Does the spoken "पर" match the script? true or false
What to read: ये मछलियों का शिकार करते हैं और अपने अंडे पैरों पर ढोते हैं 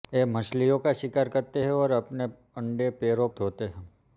false